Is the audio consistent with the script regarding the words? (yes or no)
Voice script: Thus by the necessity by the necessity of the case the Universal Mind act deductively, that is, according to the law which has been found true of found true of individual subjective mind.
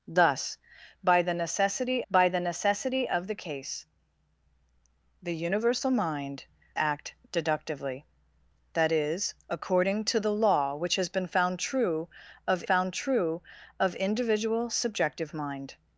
yes